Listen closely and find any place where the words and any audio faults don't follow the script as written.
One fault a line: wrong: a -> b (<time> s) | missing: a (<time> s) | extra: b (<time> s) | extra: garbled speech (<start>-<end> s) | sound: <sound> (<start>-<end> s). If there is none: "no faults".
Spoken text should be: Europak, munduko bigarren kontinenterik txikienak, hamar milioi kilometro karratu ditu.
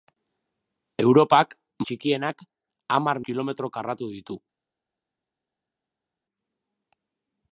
missing: munduko bigarren kontinenterik (1.5 s)
missing: milioi (3.2 s)